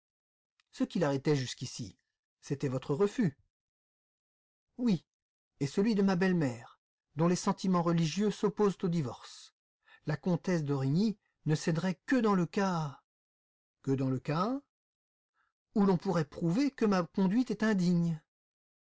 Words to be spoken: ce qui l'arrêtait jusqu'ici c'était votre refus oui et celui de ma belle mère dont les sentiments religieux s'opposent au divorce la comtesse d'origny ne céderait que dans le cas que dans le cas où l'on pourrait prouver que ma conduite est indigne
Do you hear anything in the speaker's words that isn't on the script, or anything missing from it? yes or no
no